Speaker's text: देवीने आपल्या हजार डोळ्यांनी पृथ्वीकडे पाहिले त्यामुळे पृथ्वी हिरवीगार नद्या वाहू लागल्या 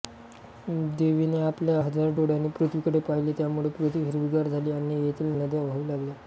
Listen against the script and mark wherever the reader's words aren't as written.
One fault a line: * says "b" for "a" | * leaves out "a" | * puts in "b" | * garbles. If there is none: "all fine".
* puts in "झाली आणि येथील"